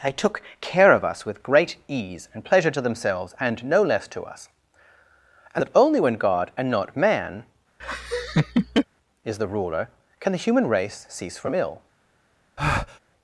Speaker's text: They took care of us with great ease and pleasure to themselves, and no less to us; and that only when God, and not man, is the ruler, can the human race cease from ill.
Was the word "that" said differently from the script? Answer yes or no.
no